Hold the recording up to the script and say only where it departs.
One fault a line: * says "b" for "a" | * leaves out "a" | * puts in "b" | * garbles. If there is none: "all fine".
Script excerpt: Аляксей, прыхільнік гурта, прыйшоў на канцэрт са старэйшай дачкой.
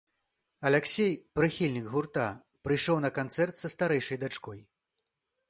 all fine